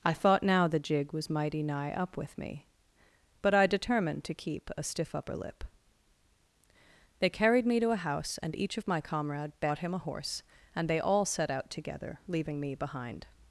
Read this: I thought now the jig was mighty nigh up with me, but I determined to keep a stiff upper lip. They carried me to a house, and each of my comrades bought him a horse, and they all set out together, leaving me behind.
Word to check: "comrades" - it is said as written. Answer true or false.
false